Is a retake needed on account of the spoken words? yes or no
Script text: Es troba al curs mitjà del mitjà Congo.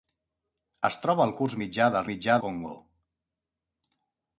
no